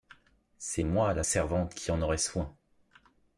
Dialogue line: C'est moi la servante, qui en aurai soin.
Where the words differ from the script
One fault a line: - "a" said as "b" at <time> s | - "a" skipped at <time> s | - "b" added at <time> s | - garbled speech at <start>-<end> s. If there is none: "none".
none